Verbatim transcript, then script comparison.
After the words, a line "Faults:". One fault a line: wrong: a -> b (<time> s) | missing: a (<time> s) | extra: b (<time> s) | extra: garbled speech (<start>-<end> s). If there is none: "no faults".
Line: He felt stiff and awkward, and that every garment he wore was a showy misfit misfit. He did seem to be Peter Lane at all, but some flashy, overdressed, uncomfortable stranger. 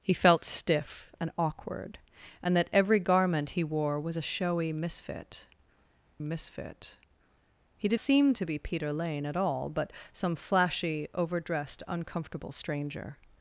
He felt stiff and awkward, and that every garment he wore was a showy misfit misfit. He did seem to be Peter Lane at all, but some flashy, overdressed, uncomfortable stranger.
Faults:
no faults